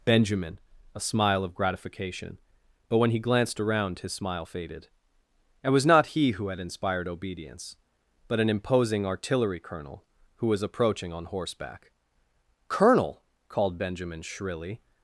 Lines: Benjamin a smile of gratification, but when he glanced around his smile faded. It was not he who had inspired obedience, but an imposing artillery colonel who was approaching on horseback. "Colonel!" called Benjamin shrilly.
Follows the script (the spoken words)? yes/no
yes